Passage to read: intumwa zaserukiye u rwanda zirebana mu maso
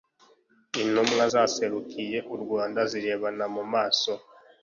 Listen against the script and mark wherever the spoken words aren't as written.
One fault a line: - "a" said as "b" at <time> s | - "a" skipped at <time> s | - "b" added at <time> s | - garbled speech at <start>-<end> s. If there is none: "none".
none